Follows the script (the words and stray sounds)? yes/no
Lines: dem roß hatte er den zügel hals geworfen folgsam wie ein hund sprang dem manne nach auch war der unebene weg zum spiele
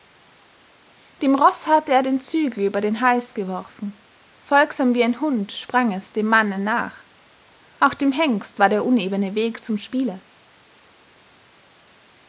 no